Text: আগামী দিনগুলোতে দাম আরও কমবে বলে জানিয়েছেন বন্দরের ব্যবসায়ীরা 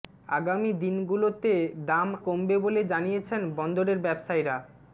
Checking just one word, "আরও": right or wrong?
wrong